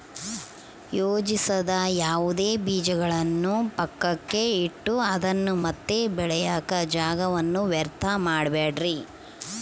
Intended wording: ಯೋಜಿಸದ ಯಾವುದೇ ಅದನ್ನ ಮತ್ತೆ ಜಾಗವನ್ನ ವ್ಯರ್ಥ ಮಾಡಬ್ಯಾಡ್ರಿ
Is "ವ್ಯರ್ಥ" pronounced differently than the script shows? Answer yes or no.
no